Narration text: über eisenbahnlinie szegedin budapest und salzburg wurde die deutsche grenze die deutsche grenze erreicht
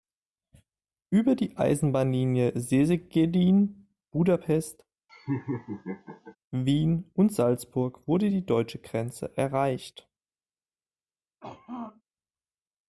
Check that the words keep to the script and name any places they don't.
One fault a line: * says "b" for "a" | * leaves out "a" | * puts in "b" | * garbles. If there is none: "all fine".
* puts in "die"
* puts in "wien"
* leaves out "die deutsche grenze"